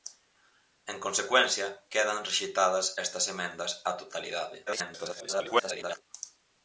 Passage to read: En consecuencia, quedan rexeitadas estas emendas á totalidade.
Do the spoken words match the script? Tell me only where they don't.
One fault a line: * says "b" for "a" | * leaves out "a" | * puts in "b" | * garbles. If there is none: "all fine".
* garbles